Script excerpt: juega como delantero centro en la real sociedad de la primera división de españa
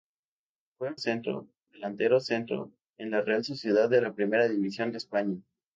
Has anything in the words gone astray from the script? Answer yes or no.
yes